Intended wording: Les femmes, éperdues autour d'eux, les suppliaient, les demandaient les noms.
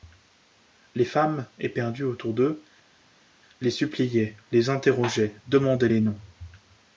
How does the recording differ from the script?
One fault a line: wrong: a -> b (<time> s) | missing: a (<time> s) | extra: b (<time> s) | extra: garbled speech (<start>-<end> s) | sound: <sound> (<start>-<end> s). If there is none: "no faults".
extra: interrogeaient (4.7 s)